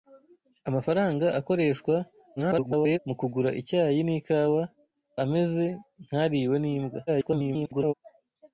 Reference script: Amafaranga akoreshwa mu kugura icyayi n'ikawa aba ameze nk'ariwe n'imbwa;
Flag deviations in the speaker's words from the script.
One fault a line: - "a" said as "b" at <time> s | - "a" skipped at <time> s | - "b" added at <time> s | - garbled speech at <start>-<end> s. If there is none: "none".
- garbled speech at 2.4-3.0 s
- "aba" skipped at 4.6 s
- garbled speech at 7.1-7.9 s